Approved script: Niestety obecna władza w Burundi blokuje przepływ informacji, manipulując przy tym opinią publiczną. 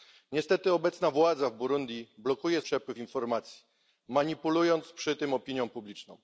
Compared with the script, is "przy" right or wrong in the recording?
right